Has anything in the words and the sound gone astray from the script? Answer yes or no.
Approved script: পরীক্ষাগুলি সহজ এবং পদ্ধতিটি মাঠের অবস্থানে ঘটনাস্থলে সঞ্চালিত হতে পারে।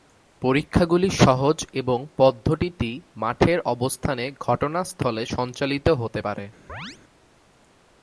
yes